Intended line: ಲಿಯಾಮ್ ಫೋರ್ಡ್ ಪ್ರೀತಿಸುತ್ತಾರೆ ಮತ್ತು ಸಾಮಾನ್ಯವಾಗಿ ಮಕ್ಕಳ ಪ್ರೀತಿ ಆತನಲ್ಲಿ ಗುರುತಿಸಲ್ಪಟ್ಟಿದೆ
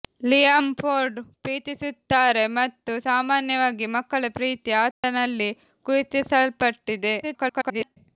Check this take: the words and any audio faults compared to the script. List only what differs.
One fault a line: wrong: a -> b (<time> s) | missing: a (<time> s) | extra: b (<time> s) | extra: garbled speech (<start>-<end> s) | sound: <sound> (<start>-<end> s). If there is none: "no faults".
sound: dropout (4.9-5.0 s)
extra: garbled speech (7.2-8.0 s)